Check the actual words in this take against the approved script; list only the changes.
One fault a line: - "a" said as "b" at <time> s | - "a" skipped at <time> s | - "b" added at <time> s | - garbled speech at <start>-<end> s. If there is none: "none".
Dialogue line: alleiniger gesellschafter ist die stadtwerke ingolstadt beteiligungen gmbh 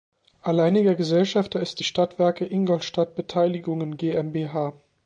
none